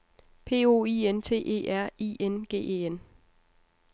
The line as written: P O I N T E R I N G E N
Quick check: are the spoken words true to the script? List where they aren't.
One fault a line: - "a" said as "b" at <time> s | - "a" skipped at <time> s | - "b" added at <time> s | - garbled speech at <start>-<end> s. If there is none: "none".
none